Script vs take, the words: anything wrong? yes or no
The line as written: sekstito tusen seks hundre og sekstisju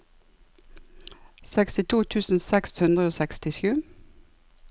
no